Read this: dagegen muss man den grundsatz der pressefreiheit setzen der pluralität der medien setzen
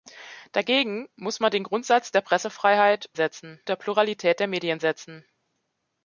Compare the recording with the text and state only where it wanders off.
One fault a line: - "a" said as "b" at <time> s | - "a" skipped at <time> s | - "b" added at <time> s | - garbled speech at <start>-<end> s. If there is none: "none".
none